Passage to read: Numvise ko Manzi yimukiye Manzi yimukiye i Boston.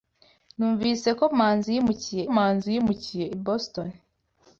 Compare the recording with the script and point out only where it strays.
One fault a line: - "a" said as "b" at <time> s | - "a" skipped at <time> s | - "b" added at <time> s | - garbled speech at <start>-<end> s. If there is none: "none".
none